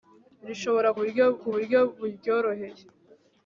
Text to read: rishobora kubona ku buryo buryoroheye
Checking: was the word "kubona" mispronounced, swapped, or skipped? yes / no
yes